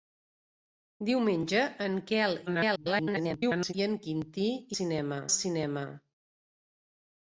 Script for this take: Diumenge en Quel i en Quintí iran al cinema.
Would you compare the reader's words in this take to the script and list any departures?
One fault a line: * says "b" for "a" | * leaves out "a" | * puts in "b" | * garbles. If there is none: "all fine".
* garbles
* says "cinema" for "iran"